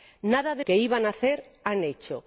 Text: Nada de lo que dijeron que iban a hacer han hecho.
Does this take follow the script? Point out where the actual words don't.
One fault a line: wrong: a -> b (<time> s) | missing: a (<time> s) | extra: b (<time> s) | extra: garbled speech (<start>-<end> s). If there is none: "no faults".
missing: lo que dijeron (0.6 s)